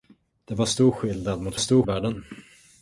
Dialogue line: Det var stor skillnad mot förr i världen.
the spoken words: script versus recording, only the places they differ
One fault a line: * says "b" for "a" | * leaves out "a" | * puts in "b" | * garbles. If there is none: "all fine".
* says "stor" for "förr"